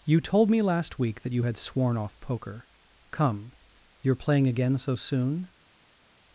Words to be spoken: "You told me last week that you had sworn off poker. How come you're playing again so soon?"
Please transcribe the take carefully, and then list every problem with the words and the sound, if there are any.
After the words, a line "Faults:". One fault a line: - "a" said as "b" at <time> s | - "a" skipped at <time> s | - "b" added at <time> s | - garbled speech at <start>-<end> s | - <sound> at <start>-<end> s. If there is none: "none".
"You told me last week that you had sworn off poker. come you're playing again so soon?"
Faults:
- "How" skipped at 2.7 s